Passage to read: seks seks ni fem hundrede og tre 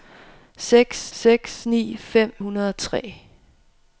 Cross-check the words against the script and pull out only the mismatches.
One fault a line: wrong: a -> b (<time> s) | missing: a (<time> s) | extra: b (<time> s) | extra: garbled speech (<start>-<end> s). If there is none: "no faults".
no faults